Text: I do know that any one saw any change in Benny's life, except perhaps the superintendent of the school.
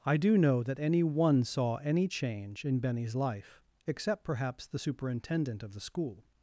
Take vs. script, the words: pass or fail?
pass